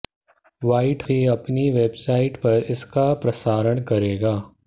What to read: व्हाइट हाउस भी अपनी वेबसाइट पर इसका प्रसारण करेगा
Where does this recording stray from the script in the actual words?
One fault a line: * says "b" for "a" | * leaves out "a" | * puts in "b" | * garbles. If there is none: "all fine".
* leaves out "हाउस"